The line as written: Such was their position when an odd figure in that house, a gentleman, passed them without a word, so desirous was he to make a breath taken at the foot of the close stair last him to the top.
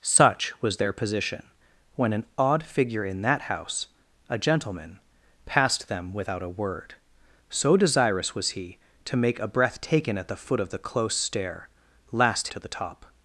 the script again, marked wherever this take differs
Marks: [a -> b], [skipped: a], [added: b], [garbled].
Such was their position when an odd figure in that house, a gentleman, passed them without a word, so desirous was he to make a breath taken at the foot of the close stair last [skipped: him] to the top.